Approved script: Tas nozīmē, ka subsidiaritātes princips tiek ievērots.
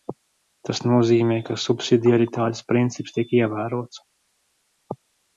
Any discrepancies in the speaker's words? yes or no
no